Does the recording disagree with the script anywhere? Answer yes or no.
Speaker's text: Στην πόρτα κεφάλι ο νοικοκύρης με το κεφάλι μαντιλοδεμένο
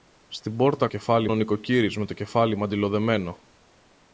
no